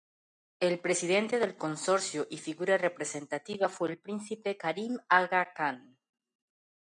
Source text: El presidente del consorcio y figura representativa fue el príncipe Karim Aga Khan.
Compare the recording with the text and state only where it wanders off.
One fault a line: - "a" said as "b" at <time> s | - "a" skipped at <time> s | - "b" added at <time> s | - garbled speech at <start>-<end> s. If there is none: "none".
none